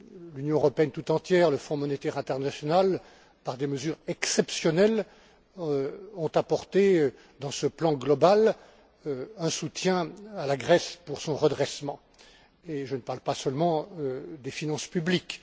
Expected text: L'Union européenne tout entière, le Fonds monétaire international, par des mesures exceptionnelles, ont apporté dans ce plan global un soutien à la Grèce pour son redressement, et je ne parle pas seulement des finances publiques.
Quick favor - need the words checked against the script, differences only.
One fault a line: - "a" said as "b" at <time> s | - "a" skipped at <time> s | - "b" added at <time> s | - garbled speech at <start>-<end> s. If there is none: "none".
none